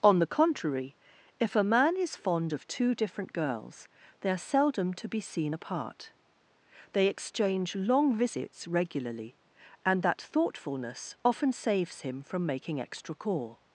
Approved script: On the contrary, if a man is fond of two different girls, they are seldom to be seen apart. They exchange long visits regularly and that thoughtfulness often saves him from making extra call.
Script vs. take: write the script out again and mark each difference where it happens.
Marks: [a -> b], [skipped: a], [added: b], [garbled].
On the contrary, if a man is fond of two different girls, they are seldom to be seen apart. They exchange long visits regularly and that thoughtfulness often saves him from making extra call.